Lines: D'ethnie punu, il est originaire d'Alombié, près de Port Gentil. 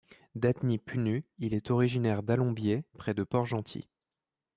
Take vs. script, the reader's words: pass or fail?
pass